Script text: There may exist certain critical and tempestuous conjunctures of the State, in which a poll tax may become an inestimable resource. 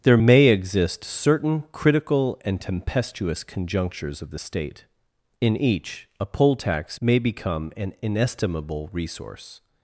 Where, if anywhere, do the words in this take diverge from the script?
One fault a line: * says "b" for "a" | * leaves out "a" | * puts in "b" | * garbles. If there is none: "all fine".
* says "each" for "which"